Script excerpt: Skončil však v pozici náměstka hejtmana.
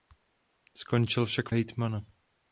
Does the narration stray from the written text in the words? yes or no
yes